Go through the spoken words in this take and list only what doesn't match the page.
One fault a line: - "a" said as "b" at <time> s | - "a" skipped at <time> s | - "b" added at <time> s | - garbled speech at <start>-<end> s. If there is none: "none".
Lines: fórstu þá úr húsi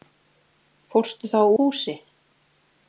- "úr" skipped at 1.4 s